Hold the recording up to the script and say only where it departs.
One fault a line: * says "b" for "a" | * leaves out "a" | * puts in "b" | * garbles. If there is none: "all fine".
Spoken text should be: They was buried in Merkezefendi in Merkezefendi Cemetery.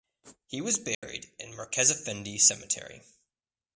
* says "He" for "They"
* leaves out "in Merkezefendi"